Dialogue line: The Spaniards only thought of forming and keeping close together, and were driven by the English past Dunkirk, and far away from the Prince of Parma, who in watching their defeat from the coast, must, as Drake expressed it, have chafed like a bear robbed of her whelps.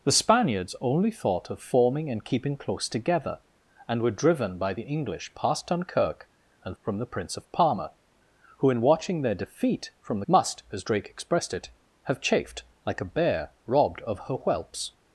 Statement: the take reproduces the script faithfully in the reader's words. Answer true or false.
false